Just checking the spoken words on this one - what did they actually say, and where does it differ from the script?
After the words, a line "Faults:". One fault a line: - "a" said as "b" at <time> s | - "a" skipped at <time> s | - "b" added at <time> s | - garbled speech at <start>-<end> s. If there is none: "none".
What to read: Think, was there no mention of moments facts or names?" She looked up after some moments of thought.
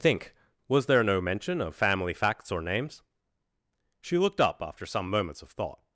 Think, was there no mention of family facts or names?" She looked up after some moments of thought.
Faults:
- "moments" said as "family" at 1.8 s